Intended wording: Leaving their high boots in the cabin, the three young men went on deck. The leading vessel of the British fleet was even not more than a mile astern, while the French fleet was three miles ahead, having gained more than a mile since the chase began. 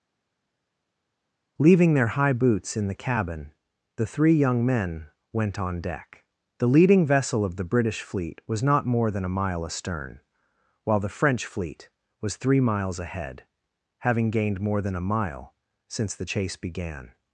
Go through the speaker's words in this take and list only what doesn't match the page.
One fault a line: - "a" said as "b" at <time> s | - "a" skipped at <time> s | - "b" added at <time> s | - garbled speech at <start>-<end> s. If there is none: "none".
- "even" skipped at 8.6 s